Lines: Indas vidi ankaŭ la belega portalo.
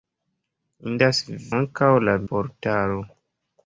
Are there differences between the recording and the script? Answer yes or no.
yes